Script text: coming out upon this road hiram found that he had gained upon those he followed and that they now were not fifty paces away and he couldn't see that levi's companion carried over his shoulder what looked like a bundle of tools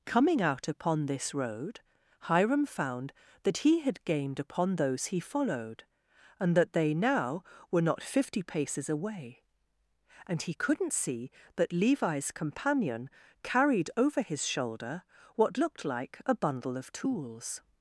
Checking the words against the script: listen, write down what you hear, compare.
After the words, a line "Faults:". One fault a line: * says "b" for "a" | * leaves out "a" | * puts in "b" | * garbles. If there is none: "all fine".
coming out upon this road hiram found that he had gained upon those he followed and that they now were not fifty paces away and he couldn't see that levi's companion carried over his shoulder what looked like a bundle of tools
Faults:
all fine